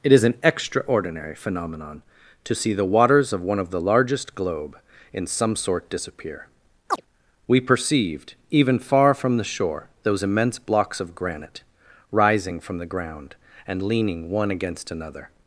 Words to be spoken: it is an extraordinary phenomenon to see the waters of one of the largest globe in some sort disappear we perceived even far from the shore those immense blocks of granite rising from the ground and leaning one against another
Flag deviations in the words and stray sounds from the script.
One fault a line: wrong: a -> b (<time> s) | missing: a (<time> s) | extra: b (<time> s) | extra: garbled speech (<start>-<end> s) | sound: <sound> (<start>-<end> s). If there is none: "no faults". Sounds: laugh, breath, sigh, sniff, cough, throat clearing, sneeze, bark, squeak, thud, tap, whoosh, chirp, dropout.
sound: chirp (6.9-7.0 s)